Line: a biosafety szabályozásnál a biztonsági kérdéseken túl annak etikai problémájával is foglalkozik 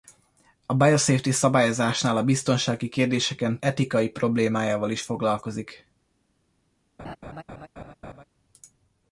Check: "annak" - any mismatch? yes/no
yes